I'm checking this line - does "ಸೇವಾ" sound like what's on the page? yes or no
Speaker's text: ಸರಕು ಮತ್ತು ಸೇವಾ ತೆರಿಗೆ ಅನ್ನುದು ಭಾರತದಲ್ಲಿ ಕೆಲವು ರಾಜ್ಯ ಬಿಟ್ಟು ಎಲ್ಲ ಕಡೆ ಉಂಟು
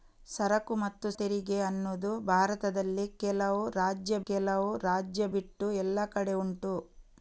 no